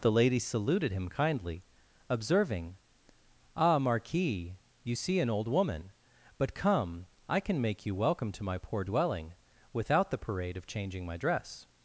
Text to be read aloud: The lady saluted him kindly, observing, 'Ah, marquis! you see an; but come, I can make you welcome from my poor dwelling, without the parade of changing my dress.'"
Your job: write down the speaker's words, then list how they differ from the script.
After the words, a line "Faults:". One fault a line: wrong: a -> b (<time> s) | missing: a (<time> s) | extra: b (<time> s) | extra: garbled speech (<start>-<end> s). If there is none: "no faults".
The lady saluted him kindly, observing, 'Ah, marquis! you see an old woman; but come, I can make you welcome to my poor dwelling, without the parade of changing my dress.'"
Faults:
extra: old woman (5.3 s)
wrong: from -> to (8.3 s)